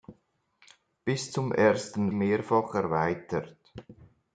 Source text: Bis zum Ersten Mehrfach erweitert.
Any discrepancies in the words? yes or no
no